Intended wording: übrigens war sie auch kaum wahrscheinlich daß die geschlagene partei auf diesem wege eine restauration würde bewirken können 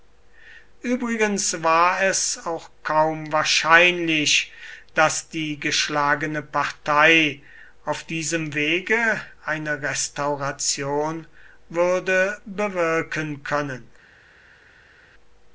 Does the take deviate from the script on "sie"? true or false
true